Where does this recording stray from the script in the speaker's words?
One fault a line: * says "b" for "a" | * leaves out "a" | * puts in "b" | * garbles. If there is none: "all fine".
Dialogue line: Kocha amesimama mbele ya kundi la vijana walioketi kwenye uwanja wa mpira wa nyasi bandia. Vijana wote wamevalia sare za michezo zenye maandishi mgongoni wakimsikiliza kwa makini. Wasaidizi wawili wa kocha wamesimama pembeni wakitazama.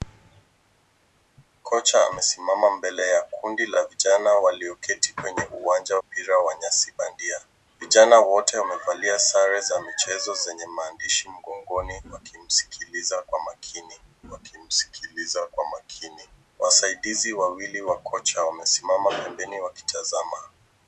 * leaves out "wa"
* puts in "wakimsikiliza kwa makini"